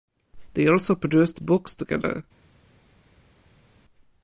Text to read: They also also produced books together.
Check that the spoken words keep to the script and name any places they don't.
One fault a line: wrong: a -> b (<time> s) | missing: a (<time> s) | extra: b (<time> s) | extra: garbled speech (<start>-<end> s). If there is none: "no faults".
missing: also (0.9 s)